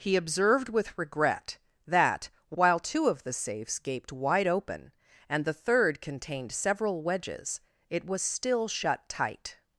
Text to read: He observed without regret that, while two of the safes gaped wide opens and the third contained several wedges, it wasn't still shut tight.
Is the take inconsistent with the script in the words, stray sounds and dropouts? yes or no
yes